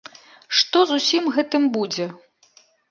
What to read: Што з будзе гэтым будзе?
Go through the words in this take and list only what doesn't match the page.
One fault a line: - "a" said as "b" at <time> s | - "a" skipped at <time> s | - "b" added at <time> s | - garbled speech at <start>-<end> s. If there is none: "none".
- "будзе" said as "усім" at 1.0 s